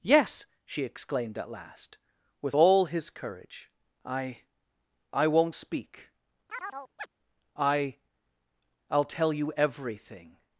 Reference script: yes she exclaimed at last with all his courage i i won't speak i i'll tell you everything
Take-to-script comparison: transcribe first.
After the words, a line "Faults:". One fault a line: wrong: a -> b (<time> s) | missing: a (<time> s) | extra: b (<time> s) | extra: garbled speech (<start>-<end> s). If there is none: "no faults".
yes she exclaimed at last with all his courage i i won't speak i i'll tell you everything
Faults:
no faults